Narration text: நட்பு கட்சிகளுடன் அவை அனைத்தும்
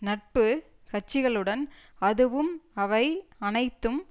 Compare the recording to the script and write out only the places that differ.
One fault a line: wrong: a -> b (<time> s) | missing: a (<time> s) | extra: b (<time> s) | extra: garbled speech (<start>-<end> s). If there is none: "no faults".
extra: அதுவும் (2.0 s)